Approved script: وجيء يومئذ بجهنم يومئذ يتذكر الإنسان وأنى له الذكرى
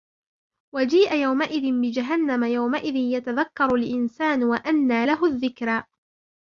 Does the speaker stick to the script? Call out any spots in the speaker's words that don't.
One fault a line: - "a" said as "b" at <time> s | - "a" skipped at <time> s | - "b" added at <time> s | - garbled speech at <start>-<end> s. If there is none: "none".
none